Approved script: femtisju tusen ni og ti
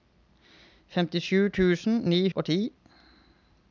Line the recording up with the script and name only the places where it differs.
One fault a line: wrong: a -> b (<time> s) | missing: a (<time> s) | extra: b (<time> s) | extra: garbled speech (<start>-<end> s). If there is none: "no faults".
no faults